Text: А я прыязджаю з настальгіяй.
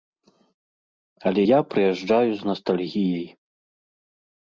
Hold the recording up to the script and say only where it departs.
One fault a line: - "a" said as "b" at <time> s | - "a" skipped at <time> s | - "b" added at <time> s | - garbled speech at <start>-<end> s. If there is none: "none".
- "А" said as "Але" at 1.3 s